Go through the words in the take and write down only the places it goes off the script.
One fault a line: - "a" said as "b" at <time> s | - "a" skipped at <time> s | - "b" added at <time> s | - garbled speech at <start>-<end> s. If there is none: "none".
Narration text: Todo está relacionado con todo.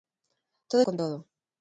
- "está relacionado" skipped at 0.8 s